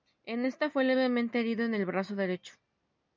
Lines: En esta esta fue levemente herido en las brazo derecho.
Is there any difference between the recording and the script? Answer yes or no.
yes